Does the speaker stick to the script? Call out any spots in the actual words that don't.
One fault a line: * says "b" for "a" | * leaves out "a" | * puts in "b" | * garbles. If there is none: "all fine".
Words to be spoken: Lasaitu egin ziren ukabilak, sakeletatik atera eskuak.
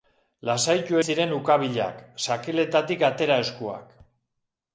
* leaves out "egin"